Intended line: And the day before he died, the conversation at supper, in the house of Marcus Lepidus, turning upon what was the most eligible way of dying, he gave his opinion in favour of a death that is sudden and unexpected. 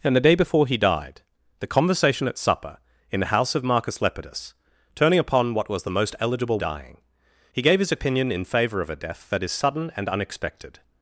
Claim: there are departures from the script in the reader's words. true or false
true